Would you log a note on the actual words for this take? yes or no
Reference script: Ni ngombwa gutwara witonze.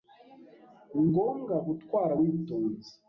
no